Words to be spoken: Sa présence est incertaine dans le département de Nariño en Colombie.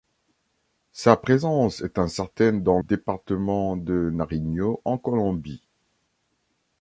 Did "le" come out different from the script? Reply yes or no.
yes